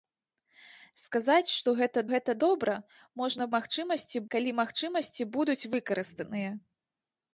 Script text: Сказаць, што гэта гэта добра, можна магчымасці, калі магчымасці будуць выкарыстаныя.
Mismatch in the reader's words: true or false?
false